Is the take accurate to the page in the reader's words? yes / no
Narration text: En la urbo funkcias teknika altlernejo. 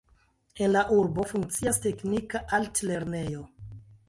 yes